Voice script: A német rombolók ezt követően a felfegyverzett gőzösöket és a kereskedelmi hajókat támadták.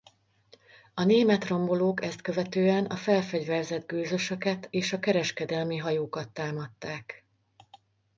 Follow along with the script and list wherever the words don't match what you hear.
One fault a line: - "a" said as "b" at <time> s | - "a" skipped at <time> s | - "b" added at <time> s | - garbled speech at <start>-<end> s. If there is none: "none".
none